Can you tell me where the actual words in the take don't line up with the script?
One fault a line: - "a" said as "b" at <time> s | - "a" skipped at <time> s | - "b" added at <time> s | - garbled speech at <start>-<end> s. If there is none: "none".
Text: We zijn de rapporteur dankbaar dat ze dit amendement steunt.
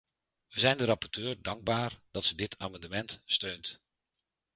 none